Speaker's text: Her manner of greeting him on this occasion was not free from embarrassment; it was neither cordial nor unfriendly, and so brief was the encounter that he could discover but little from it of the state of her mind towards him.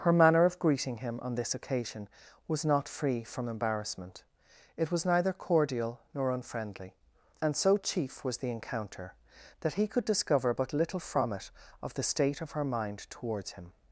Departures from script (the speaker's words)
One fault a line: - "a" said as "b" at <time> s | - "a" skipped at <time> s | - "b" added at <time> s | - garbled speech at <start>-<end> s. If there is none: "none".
- "brief" said as "chief" at 7.8 s